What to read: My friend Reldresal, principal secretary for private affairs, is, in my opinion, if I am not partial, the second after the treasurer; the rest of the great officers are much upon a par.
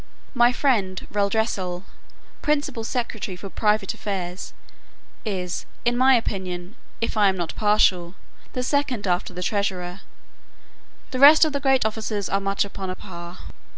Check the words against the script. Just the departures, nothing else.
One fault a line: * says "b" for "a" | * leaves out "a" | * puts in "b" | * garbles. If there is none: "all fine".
all fine